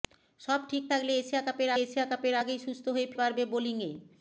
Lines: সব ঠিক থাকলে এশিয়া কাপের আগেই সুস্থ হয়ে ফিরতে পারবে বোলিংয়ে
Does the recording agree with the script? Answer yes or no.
no